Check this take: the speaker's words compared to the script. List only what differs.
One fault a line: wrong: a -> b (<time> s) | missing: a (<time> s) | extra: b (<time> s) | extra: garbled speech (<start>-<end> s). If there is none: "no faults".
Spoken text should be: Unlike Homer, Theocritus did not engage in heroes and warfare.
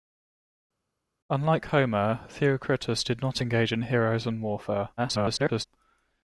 extra: garbled speech (5.0-5.6 s)